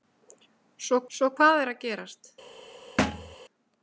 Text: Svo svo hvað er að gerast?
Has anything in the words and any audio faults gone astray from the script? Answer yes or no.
yes